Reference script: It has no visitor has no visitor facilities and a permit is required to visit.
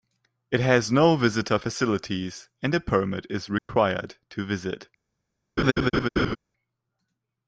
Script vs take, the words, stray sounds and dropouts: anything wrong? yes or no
yes